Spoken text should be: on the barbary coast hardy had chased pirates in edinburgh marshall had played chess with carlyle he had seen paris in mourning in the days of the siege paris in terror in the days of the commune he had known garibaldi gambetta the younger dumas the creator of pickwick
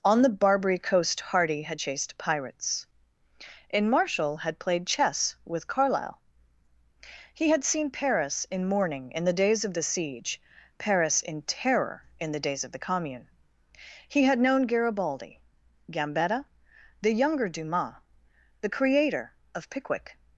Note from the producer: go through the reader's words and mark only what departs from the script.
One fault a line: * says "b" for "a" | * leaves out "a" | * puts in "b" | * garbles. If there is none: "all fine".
* leaves out "edinburgh"